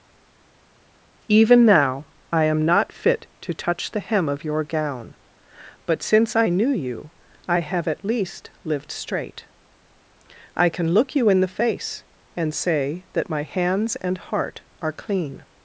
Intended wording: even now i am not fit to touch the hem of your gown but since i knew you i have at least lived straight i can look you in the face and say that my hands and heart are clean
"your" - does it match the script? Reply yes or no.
yes